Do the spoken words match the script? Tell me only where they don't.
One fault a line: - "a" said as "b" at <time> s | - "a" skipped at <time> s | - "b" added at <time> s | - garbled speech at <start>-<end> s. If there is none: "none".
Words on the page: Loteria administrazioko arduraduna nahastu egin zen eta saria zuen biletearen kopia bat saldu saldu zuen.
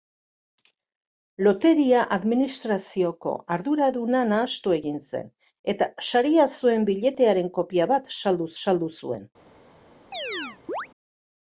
none